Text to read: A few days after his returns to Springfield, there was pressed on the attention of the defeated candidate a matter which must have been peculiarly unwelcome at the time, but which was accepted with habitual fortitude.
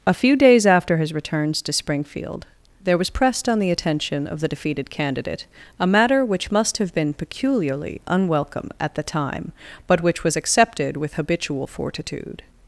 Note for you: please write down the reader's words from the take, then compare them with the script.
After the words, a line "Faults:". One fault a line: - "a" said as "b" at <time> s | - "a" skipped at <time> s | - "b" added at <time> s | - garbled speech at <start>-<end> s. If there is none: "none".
A few days after his returns to Springfield, there was pressed on the attention of the defeated candidate a matter which must have been peculiarly unwelcome at the time, but which was accepted with habitual fortitude.
Faults:
none